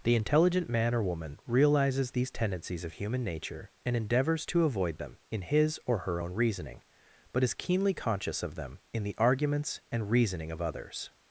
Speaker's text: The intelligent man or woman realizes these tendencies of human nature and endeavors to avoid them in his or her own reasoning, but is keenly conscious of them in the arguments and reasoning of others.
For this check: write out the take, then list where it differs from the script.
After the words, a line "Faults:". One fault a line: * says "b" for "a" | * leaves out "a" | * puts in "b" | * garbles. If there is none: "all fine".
The intelligent man or woman realizes these tendencies of human nature and endeavors to avoid them in his or her own reasoning, but is keenly conscious of them in the arguments and reasoning of others.
Faults:
all fine